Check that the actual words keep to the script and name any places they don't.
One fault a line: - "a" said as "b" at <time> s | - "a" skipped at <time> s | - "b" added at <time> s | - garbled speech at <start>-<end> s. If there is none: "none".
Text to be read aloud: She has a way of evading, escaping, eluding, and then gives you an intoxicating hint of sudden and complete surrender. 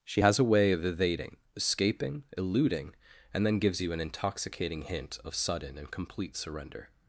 none